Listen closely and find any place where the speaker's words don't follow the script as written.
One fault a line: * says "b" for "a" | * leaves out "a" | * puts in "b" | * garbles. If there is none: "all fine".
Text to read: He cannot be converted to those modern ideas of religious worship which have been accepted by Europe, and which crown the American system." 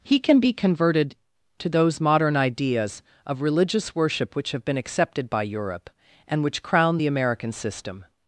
* says "can" for "cannot"